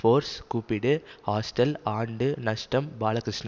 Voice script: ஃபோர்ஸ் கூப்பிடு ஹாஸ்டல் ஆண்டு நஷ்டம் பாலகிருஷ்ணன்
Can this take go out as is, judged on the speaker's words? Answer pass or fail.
pass